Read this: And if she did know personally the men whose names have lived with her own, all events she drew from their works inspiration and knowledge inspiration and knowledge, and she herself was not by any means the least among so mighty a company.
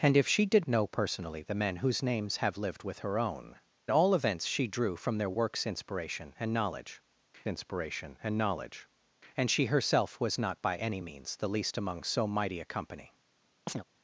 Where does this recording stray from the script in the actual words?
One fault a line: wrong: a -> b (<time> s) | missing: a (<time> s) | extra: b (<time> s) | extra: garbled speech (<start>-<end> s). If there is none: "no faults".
no faults